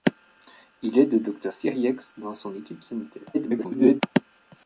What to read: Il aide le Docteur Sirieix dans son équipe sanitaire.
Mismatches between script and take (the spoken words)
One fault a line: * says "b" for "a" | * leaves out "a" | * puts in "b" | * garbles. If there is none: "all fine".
* garbles